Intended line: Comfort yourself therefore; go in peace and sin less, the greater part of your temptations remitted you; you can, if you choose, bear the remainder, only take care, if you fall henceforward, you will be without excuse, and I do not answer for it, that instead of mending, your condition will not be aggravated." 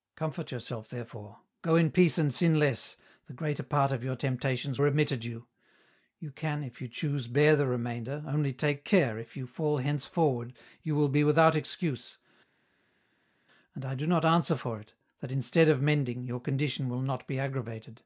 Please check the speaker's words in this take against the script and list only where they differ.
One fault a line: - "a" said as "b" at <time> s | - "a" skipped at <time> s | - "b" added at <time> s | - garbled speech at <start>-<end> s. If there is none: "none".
none